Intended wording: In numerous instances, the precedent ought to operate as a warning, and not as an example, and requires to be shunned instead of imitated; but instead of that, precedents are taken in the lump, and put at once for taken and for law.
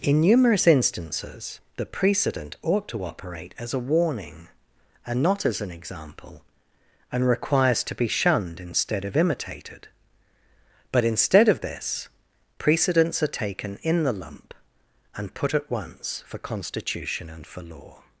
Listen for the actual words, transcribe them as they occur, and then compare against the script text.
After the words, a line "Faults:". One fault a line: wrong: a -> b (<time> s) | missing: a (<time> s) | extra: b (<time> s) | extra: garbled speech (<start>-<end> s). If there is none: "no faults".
In numerous instances, the precedent ought to operate as a warning, and not as an example, and requires to be shunned instead of imitated; but instead of this, precedents are taken in the lump, and put at once for constitution and for law.
Faults:
wrong: that -> this (11.6 s)
wrong: taken -> constitution (16.4 s)